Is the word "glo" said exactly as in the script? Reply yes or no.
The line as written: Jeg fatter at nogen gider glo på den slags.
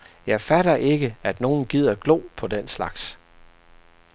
yes